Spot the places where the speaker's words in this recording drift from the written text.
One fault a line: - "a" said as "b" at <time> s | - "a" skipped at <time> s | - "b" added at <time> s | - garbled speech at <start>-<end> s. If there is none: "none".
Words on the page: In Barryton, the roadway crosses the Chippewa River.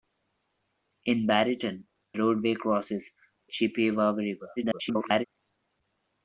- "the" skipped at 1.8 s
- "the" skipped at 3.1 s
- garbled speech at 4.6-5.2 s